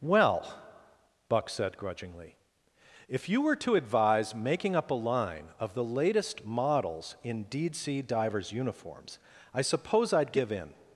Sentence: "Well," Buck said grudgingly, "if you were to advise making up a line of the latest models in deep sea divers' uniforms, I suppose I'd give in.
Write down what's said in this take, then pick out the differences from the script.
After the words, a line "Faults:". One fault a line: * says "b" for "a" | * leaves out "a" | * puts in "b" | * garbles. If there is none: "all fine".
"Well," Buck said grudgingly, "if you were to advise making up a line of the latest models in deed sea divers' uniforms, I suppose I'd give in.
Faults:
* says "deed" for "deep"